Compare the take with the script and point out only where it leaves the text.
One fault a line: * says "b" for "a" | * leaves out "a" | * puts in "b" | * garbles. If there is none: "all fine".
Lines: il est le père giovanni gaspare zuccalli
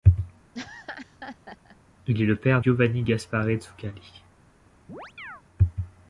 all fine